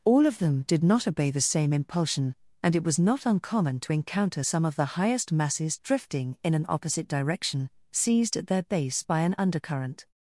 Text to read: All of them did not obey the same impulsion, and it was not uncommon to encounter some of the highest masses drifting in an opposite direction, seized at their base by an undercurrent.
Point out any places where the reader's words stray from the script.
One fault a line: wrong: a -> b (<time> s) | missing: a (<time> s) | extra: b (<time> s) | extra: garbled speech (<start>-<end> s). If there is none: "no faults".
no faults